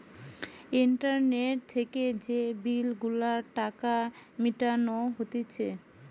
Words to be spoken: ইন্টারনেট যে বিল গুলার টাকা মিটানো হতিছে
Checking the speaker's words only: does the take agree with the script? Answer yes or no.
no